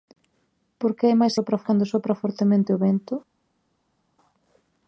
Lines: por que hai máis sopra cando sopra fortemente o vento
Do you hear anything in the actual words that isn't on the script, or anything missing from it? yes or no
no